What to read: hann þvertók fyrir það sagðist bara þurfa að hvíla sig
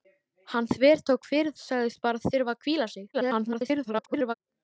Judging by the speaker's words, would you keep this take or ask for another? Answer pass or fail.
fail